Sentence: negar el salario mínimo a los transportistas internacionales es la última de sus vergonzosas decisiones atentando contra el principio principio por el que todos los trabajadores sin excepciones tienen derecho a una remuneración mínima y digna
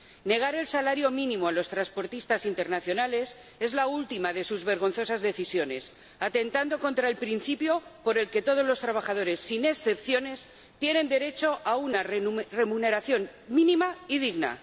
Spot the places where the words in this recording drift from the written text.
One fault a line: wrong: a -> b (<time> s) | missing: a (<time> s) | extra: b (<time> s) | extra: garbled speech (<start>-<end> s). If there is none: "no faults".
missing: principio (7.8 s)